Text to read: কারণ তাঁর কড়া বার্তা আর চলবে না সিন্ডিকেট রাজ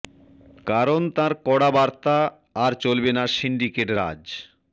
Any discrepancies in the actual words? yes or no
no